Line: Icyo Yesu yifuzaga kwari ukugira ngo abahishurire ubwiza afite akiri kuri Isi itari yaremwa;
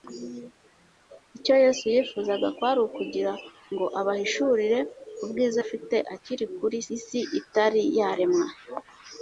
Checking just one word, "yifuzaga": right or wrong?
right